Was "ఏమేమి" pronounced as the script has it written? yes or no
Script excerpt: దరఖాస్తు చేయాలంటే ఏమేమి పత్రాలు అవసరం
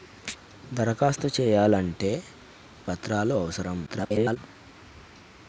no